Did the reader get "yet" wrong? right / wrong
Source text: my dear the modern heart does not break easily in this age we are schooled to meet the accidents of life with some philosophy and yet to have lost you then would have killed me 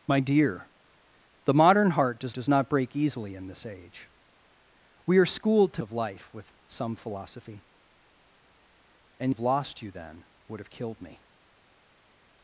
wrong